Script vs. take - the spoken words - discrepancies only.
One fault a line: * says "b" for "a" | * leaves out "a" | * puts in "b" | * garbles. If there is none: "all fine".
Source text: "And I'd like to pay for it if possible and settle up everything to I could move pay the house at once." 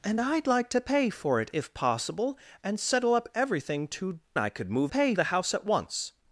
all fine